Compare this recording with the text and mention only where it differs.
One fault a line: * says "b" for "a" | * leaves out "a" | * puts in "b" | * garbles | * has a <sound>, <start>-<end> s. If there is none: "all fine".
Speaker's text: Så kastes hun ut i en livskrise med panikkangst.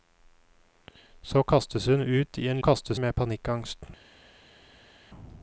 * says "kastes" for "livskrise"